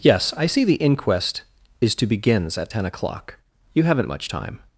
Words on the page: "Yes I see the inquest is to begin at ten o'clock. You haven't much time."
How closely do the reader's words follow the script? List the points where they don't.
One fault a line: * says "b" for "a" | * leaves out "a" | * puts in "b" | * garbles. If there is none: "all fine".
* says "begins" for "begin"